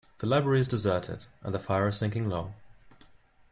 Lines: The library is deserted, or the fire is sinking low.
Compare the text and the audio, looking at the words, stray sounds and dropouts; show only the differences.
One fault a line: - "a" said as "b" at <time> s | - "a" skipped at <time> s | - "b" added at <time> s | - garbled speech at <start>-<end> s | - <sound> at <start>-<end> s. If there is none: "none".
- "or" said as "and" at 1.4 s